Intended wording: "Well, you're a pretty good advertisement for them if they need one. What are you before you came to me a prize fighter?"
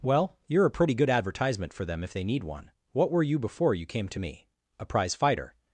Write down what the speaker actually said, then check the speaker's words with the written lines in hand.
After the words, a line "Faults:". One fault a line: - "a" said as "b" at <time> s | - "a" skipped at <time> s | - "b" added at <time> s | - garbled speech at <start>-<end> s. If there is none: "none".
"Well, you're a pretty good advertisement for them if they need one. What were you before you came to me a prize fighter?"
Faults:
- "are" said as "were" at 3.1 s